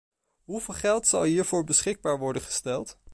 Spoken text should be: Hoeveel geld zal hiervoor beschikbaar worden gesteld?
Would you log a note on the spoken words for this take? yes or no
no